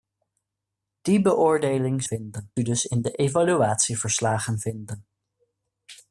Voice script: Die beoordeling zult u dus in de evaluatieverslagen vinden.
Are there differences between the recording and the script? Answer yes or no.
yes